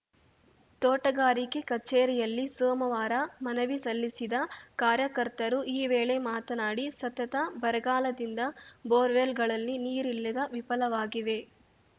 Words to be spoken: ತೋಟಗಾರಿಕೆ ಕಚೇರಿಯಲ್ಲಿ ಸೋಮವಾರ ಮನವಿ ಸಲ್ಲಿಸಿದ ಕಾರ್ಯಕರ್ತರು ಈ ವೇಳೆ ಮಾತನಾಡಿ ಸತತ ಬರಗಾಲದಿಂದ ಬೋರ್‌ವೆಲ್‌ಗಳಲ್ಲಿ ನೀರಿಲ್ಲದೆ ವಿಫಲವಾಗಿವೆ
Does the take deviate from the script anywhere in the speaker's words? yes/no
no